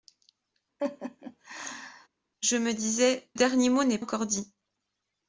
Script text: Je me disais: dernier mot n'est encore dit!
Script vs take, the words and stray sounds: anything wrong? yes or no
yes